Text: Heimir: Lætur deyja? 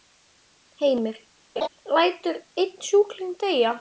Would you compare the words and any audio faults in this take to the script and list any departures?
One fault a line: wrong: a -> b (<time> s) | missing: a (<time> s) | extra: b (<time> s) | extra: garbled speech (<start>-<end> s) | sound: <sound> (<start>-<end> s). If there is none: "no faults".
sound: laugh (1.6-1.7 s)
extra: einn sjúkling (2.6 s)